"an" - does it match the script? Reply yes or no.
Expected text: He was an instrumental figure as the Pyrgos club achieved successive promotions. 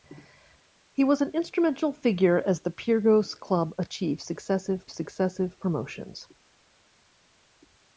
yes